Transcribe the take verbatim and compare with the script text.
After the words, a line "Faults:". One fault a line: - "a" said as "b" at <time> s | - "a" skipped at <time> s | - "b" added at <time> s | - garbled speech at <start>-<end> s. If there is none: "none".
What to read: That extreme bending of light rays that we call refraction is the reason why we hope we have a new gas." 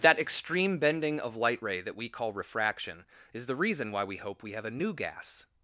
That extreme bending of light ray that we call refraction is the reason why we hope we have a new gas."
Faults:
- "rays" said as "ray" at 1.6 s